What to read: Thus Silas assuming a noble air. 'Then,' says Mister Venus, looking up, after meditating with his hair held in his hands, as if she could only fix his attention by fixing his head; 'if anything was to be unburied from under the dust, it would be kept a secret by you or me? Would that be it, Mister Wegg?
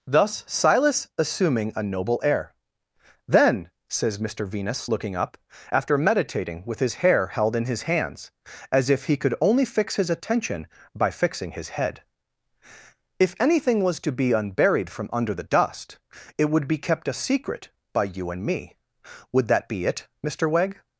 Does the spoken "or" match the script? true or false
false